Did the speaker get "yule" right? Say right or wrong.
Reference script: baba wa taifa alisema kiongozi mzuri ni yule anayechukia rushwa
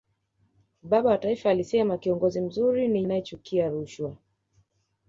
wrong